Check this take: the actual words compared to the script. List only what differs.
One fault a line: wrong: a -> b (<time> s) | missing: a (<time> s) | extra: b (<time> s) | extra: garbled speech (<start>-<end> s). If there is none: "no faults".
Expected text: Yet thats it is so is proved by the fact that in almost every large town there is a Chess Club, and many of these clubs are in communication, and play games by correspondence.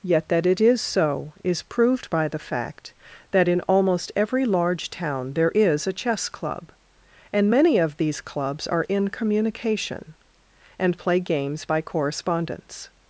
wrong: thats -> that (0.3 s)